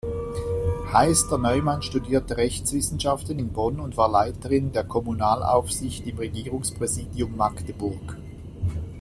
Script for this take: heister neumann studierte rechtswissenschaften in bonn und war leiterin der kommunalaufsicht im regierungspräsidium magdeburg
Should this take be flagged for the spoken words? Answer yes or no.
no